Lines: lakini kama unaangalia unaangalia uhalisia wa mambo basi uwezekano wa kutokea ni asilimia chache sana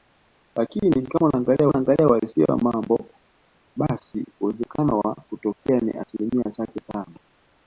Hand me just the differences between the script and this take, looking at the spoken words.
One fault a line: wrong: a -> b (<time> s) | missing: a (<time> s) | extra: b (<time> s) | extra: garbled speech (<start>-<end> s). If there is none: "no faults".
no faults